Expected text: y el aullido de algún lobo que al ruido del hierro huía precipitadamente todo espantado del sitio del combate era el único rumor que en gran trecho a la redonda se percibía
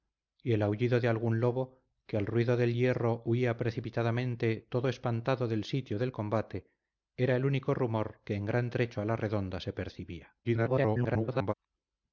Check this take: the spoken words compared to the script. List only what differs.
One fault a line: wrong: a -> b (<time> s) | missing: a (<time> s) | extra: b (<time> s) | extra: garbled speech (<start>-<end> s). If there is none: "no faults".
extra: garbled speech (10.4-11.5 s)